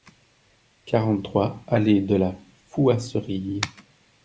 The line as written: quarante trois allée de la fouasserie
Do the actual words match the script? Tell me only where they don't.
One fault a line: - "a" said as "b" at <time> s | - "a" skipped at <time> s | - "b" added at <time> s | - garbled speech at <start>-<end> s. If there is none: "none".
none